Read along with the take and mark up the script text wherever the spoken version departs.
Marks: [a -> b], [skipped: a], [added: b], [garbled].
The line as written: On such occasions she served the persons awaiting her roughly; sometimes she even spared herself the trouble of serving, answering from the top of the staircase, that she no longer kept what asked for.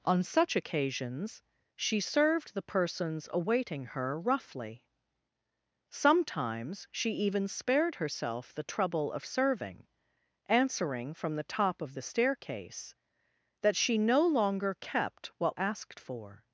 On such occasions she served the persons awaiting her roughly; sometimes she even spared herself the trouble of serving, answering from the top of the staircase, that she no longer kept what asked for.